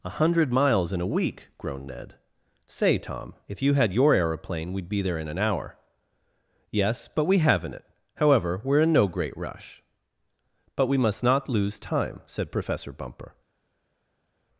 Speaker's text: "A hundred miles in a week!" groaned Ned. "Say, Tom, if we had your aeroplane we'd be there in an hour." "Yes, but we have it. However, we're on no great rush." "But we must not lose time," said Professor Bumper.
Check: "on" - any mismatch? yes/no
yes